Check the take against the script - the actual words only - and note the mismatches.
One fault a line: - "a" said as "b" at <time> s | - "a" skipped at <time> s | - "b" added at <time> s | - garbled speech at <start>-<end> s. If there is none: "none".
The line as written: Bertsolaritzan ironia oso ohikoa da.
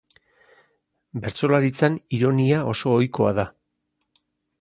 none